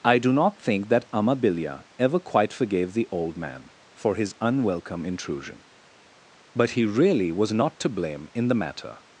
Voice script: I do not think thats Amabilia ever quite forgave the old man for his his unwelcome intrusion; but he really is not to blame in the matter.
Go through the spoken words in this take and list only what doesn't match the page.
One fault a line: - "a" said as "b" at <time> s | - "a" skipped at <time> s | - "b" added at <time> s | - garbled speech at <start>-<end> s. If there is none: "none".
- "thats" said as "that" at 0.9 s
- "his" skipped at 4.3 s
- "is" said as "was" at 7.3 s